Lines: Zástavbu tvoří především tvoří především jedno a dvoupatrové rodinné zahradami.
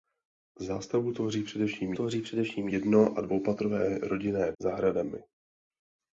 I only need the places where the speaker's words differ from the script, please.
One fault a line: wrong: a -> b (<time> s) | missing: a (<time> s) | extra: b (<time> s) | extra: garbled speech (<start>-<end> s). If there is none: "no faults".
no faults